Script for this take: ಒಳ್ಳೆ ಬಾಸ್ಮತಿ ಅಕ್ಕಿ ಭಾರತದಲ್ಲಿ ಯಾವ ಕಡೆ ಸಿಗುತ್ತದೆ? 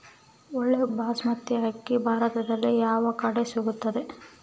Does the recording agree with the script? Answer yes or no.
yes